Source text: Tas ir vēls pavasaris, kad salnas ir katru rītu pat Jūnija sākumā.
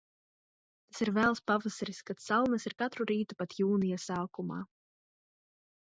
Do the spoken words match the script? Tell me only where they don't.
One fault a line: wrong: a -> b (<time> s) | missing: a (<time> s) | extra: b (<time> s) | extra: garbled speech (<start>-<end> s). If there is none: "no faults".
no faults